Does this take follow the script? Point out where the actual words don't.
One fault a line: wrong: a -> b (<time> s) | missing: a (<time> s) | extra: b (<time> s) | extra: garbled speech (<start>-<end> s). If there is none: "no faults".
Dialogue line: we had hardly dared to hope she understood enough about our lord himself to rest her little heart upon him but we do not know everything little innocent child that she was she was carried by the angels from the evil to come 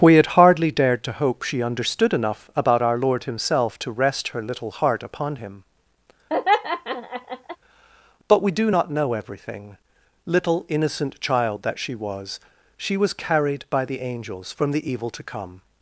no faults